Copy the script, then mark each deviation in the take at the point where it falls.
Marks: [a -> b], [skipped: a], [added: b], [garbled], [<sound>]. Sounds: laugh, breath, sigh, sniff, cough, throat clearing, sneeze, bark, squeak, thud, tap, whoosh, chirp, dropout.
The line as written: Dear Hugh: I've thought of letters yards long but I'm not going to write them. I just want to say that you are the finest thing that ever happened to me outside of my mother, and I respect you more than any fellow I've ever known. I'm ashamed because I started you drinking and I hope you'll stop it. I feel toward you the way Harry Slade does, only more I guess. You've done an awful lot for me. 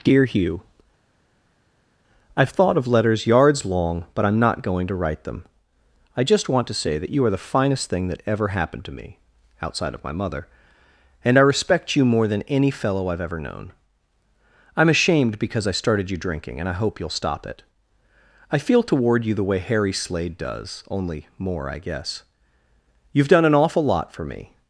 Dear Hugh: I've thought of letters yards long but I'm not going to write them. I just want to say that you are the finest thing that ever happened to me outside of my mother, and I respect you more than any fellow I've ever known. I'm ashamed because I started you drinking and I hope you'll stop it. I feel toward you the way Harry Slade does, only more I guess. You've done an awful lot for me.